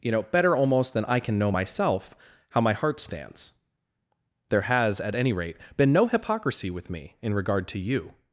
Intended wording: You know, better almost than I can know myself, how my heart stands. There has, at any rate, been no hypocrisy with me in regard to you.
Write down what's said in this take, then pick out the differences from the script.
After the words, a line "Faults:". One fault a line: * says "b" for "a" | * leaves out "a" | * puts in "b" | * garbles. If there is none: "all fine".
You know, better almost than I can know myself, how my heart stands. There has, at any rate, been no hypocrisy with me in regard to you.
Faults:
all fine